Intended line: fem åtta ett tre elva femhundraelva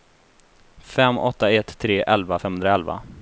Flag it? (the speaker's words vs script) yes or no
no